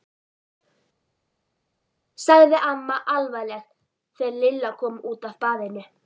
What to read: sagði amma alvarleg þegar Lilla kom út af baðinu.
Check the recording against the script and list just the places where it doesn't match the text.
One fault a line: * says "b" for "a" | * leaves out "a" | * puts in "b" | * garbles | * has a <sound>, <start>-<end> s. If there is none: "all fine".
all fine